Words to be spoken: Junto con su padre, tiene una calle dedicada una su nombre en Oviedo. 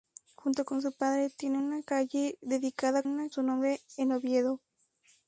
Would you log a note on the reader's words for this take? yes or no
no